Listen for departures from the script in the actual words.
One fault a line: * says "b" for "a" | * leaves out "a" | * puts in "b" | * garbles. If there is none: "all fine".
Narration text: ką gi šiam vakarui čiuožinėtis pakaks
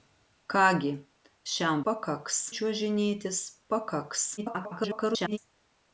* says "pakaks" for "vakarui"
* garbles